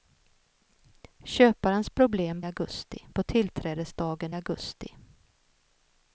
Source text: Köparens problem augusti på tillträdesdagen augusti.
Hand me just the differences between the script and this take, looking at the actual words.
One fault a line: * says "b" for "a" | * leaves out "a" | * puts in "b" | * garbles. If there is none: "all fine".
all fine